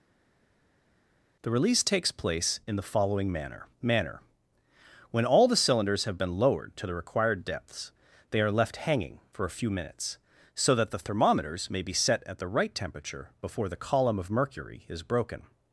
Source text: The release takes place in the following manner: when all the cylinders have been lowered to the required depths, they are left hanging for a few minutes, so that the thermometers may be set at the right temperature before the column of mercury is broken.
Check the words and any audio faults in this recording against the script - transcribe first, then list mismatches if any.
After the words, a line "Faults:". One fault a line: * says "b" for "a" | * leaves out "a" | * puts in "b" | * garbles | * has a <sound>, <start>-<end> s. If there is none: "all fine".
The release takes place in the following manner manner: when all the cylinders have been lowered to the required depths, they are left hanging for a few minutes, so that the thermometers may be set at the right temperature before the column of mercury is broken.
Faults:
* puts in "manner"